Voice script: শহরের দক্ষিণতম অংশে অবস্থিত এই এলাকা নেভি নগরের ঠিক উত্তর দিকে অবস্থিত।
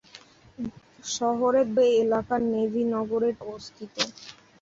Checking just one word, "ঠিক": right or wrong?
wrong